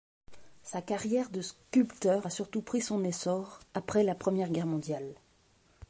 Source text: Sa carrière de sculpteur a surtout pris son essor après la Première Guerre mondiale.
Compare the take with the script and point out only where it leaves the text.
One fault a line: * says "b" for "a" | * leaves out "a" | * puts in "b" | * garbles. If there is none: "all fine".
all fine